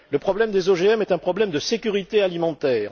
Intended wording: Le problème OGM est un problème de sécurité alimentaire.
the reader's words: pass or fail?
fail